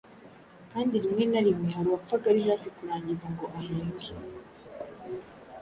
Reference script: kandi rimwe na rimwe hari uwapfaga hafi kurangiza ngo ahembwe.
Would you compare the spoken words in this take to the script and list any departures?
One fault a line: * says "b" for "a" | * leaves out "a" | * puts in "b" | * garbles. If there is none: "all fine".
* puts in "ari"